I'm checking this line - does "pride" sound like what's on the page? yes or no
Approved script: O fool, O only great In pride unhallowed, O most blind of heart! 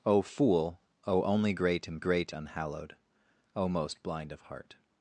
no